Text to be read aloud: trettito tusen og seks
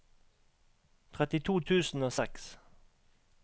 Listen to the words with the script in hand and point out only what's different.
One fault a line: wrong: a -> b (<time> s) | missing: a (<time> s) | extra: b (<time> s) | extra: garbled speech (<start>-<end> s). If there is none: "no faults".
no faults